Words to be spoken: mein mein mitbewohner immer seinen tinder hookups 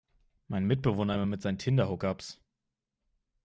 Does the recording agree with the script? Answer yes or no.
no